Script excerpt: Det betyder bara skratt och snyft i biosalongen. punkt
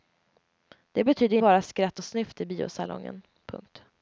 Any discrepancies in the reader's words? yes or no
no